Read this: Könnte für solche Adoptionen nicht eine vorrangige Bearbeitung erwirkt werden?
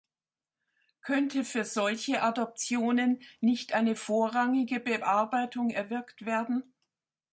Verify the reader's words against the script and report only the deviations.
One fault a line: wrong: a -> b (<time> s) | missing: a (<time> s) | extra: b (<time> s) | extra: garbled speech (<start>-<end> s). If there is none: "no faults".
no faults